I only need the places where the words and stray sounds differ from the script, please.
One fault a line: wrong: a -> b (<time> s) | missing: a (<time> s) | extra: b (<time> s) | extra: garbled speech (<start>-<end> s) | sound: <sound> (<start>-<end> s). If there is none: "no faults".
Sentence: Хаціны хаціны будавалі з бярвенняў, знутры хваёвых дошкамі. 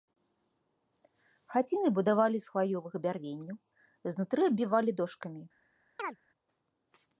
missing: хаціны (1.9 s)
extra: хваёвых (2.5 s)
wrong: хваёвых -> аббівалі (4.5 s)
sound: chirp (6.0-6.2 s)